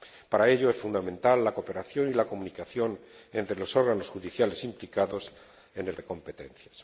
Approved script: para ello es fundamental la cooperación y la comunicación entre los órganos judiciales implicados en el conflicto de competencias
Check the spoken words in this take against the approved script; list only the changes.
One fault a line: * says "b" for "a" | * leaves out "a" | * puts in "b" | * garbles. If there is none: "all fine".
* leaves out "conflicto"